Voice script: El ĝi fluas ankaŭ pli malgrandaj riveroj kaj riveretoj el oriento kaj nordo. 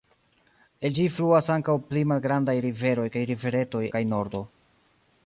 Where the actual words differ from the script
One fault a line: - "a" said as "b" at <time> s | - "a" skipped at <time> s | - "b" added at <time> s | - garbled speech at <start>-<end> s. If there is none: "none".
- "el oriento" skipped at 3.9 s